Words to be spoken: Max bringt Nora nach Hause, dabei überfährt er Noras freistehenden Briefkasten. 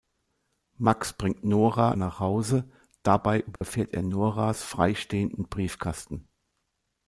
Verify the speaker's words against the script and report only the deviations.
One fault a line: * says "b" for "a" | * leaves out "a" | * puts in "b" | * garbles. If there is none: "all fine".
all fine